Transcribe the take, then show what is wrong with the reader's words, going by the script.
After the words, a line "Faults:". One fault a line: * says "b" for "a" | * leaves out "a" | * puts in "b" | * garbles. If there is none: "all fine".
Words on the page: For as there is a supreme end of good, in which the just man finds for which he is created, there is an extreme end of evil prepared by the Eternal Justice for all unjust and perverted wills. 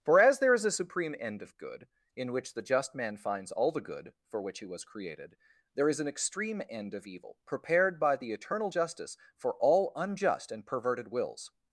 For as there is a supreme end of good, in which the just man finds all the good for which he was created, there is an extreme end of evil prepared by the Eternal Justice for all unjust and perverted wills.
Faults:
* puts in "all the good"
* says "was" for "is"